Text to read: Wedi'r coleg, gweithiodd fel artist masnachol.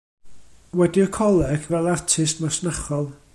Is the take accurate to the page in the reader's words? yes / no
no